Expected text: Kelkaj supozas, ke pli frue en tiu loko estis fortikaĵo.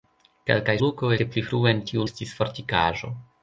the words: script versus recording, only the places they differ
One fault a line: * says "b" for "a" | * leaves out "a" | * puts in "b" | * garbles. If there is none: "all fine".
* says "loko" for "supozas"
* leaves out "loko"